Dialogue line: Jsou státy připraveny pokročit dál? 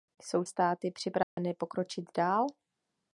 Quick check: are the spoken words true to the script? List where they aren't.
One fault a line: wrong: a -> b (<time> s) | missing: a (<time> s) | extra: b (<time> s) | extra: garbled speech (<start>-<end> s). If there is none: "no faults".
no faults